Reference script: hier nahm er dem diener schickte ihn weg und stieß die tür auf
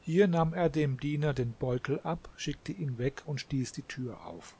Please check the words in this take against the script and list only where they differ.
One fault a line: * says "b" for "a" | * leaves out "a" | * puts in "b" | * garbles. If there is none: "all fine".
* puts in "den beutel ab"